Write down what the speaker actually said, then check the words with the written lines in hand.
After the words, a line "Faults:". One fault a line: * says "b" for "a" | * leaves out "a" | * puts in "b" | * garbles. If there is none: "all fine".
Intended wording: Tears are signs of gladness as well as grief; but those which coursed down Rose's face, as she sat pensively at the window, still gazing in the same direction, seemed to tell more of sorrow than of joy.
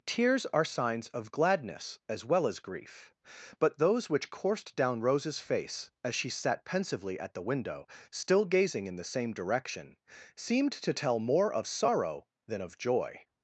Tears are signs of gladness as well as grief; but those which coursed down Rose's face, as she sat pensively at the window, still gazing in the same direction, seemed to tell more of sorrow than of joy.
Faults:
all fine